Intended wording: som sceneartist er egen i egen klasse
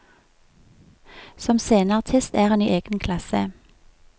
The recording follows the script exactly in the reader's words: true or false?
false